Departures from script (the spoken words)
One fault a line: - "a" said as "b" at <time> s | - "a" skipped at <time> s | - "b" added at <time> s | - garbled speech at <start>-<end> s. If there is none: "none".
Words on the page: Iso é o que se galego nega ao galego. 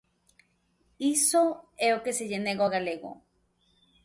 - "galego" said as "lle" at 2.3 s